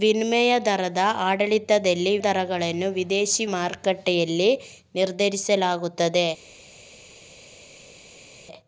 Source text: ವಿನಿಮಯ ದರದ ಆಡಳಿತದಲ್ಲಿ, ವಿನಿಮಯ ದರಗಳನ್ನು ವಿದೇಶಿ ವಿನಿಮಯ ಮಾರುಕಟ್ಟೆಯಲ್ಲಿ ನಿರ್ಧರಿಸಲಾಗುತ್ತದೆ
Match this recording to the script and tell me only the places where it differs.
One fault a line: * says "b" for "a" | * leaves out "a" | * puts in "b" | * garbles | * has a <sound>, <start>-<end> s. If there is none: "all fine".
* leaves out "ವಿನಿಮಯ"
* leaves out "ವಿನಿಮಯ"